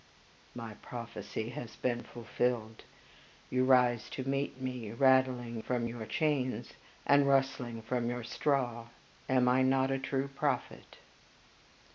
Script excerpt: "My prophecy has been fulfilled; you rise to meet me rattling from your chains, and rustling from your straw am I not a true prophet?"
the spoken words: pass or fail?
pass